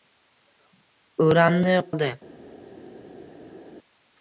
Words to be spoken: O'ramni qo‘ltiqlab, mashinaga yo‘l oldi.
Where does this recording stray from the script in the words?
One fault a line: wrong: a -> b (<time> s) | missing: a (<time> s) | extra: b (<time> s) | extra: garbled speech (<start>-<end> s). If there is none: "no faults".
missing: qo‘ltiqlab mashinaga yo‘l (1.8 s)